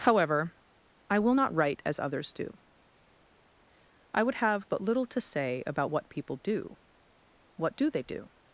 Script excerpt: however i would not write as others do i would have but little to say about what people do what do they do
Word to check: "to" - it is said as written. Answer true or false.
true